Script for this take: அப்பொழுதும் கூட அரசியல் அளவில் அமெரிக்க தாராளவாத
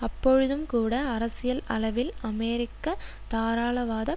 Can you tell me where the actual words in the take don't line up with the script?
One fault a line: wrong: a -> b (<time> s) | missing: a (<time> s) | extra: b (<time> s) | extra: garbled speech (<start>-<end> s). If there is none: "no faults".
no faults